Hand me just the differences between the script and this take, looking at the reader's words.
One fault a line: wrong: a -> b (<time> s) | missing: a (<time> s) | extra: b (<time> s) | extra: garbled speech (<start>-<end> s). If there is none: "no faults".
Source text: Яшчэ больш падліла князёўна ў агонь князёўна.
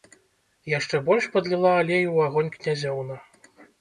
wrong: князёўна -> алею (1.8 s)